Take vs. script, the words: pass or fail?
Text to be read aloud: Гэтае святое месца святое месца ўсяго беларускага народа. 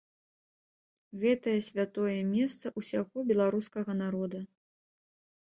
fail